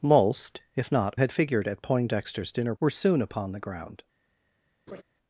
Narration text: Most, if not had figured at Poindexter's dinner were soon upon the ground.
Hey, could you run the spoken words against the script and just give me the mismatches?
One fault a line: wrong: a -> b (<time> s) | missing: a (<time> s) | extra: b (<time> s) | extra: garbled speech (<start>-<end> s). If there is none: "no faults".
no faults